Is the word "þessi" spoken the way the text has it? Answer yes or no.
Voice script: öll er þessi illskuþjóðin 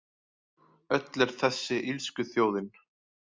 yes